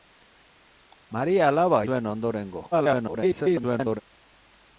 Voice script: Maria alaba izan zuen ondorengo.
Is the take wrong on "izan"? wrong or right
wrong